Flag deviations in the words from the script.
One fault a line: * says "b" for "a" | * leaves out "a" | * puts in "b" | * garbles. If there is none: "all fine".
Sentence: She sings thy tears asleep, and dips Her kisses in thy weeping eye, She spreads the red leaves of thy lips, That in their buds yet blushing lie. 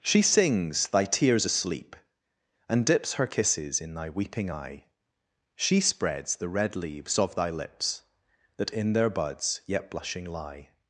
all fine